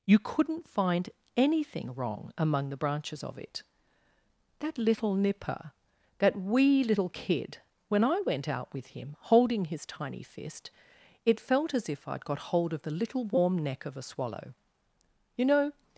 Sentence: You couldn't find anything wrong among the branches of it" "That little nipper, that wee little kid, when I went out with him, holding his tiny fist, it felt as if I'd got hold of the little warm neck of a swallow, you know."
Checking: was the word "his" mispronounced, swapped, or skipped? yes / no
no